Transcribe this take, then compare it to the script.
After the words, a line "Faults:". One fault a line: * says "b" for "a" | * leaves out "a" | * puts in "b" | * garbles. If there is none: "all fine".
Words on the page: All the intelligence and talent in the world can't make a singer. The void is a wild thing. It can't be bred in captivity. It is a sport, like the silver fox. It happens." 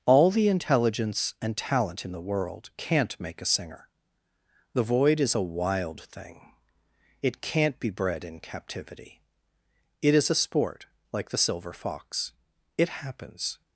All the intelligence and talent in the world can't make a singer. The void is a wild thing. It can't be bred in captivity. It is a sport, like the silver fox. It happens."
Faults:
all fine